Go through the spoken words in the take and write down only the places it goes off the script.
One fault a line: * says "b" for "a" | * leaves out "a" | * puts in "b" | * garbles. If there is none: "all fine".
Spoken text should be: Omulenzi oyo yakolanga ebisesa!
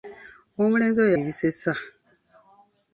* leaves out "yakolanga"